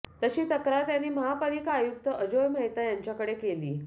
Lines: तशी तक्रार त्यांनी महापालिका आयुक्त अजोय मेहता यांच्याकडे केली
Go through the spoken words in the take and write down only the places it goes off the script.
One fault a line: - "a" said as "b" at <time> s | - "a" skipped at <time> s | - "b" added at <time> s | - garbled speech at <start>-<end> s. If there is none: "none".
none